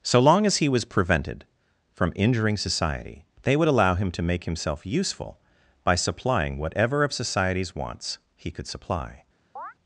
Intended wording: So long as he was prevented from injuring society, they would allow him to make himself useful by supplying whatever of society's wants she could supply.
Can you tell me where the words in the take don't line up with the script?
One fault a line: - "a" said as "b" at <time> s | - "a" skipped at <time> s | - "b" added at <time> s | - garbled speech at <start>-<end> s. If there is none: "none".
- "she" said as "he" at 8.3 s